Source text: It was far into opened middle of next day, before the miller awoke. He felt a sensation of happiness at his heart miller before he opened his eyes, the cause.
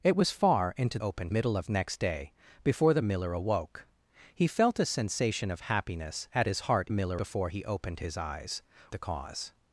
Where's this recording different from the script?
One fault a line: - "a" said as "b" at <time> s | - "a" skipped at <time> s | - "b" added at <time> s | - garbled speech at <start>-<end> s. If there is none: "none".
none